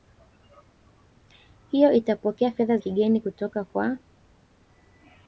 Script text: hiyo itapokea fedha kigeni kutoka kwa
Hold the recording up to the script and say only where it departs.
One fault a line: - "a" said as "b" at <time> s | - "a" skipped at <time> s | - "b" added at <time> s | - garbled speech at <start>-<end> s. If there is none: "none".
none